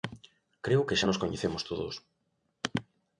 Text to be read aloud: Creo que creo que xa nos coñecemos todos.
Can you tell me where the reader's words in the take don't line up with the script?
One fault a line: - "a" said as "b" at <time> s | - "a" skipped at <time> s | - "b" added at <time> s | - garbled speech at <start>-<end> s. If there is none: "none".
- "creo que" skipped at 1.0 s